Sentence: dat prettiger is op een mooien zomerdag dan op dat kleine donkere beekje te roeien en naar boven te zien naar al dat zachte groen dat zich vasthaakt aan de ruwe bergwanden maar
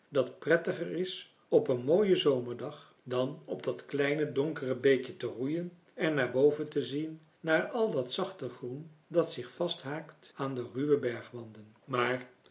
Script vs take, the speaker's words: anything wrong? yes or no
no